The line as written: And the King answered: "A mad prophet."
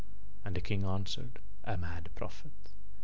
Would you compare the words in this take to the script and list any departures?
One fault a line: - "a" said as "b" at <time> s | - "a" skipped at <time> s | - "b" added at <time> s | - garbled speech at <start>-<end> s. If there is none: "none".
none